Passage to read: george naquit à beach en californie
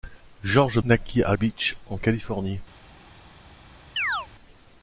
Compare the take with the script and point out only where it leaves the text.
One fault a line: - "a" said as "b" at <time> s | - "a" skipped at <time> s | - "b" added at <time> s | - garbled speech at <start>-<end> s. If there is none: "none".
none